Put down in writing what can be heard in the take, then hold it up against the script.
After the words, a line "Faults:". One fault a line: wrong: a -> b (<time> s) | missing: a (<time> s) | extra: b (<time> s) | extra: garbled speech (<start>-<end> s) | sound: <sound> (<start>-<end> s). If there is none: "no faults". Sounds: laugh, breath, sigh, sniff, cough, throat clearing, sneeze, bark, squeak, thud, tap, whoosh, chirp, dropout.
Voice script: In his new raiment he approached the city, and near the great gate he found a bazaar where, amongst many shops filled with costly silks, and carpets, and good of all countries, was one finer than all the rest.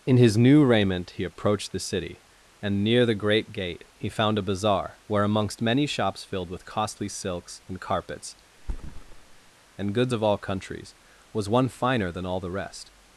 In his new raiment he approached the city, and near the great gate he found a bazaar where, amongst many shops filled with costly silks, and carpets, and goods of all countries, was one finer than all the rest.
Faults:
sound: thud (8.6-9.5 s)
wrong: good -> goods (9.9 s)